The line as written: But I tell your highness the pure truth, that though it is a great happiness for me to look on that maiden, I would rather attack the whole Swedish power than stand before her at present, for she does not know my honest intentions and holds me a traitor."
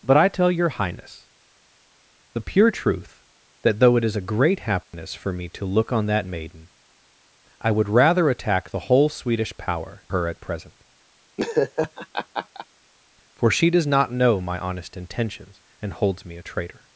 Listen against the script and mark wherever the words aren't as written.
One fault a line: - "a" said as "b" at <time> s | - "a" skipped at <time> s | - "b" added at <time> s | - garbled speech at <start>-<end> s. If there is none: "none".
- "than stand before" skipped at 10.1 s